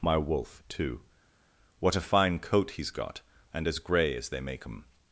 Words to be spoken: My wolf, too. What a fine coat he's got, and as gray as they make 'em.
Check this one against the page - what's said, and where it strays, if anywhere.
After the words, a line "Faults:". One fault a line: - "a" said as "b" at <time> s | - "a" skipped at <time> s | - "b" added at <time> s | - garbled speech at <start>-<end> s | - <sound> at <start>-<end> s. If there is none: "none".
My wolf, too. What a fine coat he's got, and as gray as they make 'em.
Faults:
none